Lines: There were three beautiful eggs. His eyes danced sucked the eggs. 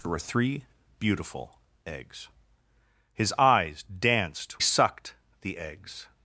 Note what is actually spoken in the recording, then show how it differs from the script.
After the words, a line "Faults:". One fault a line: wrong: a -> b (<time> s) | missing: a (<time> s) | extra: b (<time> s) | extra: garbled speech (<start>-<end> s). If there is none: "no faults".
There were three beautiful eggs. His eyes danced sucked the eggs.
Faults:
no faults